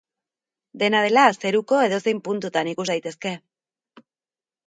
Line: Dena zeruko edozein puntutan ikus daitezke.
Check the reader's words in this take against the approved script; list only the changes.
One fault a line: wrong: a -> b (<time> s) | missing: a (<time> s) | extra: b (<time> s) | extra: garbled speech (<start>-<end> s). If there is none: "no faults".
extra: dela (1.1 s)